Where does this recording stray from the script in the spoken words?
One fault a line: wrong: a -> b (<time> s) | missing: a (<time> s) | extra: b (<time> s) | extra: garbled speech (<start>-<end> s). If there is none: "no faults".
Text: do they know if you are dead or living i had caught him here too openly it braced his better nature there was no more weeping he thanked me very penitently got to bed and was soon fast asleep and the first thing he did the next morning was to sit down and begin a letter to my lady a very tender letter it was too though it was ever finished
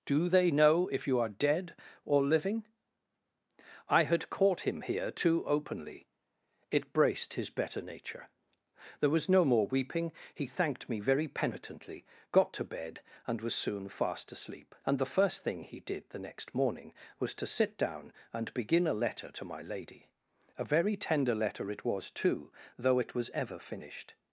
no faults